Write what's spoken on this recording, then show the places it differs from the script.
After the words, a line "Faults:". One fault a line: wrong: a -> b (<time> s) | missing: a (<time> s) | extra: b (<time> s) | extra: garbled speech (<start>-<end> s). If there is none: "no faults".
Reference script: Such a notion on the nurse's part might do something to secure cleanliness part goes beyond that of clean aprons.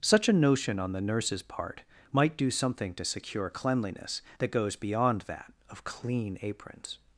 Such a notion on the nurse's part might do something to secure cleanliness that goes beyond that of clean aprons.
Faults:
wrong: part -> that (4.4 s)